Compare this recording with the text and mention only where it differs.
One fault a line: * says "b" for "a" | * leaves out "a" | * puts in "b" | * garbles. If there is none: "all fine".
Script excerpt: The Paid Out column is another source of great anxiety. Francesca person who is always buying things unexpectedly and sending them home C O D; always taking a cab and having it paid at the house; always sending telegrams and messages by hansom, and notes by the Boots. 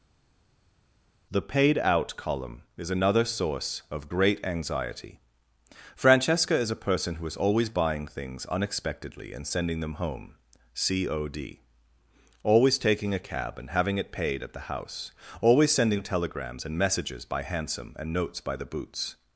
* puts in "is a"